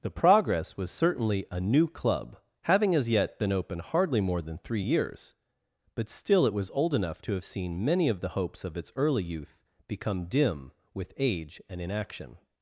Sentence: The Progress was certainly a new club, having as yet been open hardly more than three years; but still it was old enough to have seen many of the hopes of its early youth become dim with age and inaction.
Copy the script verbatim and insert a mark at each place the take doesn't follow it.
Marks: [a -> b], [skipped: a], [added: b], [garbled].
The Progress was certainly a new club, having as yet been open hardly more than three years; but still it was old enough to have seen many of the hopes of its early youth become dim with age and inaction.